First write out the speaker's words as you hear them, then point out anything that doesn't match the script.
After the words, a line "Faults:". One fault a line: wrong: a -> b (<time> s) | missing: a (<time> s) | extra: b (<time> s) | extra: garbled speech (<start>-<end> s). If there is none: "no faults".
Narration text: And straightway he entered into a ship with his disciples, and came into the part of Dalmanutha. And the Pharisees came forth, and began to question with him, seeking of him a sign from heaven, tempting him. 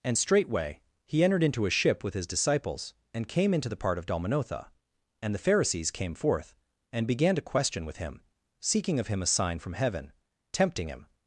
And straightway he entered into a ship with his disciples, and came into the part of Dalmanutha. And the Pharisees came forth, and began to question with him, seeking of him a sign from heaven, tempting him.
Faults:
no faults